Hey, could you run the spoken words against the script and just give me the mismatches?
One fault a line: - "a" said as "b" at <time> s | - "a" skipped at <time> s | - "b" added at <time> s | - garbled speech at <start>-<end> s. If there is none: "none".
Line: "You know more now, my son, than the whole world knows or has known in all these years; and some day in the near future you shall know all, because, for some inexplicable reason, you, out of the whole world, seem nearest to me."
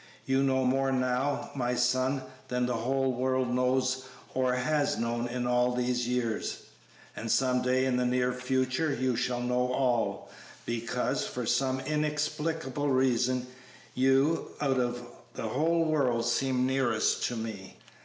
none